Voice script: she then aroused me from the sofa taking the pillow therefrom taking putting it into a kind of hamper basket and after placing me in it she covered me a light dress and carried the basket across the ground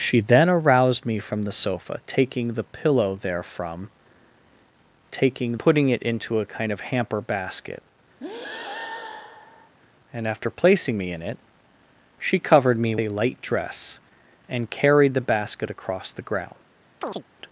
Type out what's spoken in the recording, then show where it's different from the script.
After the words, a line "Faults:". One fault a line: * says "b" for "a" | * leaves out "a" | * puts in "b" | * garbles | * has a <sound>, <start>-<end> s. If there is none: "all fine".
she then aroused me from the sofa taking the pillow therefrom taking putting it into a kind of hamper basket and after placing me in it she covered me a light dress and carried the basket across the ground
Faults:
* has a breath, 8.2-9.8 s
* has a chirp, 17.0-17.2 s